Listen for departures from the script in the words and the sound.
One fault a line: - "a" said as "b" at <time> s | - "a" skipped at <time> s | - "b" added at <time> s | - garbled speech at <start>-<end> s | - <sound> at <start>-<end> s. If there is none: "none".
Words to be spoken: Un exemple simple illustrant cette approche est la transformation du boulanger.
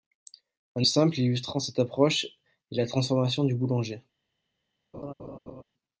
- "exemple" skipped at 0.9 s
- laugh at 4.9-5.6 s